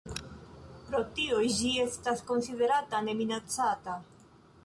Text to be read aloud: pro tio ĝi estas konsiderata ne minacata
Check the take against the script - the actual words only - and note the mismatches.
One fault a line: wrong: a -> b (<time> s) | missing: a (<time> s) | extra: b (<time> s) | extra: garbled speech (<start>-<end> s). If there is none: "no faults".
no faults